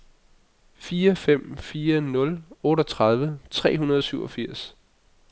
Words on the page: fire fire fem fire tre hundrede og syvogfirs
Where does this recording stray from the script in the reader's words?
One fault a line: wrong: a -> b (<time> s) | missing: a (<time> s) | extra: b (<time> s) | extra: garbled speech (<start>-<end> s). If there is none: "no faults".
extra: fem (1.1 s)
wrong: fem fire -> nul otteogtredive (2.0 s)